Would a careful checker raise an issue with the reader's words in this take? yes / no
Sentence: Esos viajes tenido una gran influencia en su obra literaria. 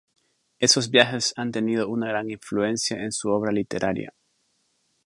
yes